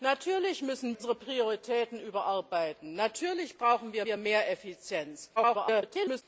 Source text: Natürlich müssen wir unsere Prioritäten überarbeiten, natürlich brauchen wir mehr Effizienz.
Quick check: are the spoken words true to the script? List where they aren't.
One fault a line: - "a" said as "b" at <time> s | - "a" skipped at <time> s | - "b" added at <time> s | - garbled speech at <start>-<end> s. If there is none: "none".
- "wir" skipped at 0.9 s
- "wir" added at 4.0 s
- garbled speech at 5.4-6.2 s